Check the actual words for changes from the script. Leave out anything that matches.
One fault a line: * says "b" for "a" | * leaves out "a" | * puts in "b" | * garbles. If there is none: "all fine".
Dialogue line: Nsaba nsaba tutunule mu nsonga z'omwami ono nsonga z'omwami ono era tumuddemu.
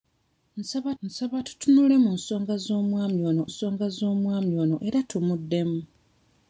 all fine